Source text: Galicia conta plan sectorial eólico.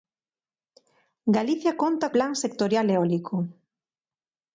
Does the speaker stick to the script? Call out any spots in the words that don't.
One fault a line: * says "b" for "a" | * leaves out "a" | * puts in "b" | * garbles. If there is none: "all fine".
all fine